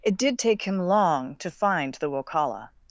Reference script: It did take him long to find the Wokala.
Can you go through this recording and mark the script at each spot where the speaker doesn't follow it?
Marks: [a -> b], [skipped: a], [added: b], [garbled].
It did take him long to find the Wokala.